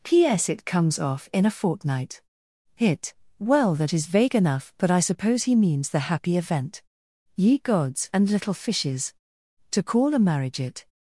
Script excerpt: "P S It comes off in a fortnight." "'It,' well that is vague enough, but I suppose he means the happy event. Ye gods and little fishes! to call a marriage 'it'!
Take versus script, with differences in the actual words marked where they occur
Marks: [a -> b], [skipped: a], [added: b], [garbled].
"P S It comes off in a fortnight." ["'It,' -> Hit] well that is vague enough, but I suppose he means the happy event. Ye gods and little fishes! to call a marriage 'it'!